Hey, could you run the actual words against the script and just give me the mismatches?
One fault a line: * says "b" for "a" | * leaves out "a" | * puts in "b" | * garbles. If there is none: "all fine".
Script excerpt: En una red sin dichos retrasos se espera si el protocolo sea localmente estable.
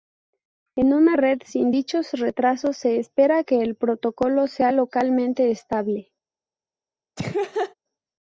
* says "que" for "si"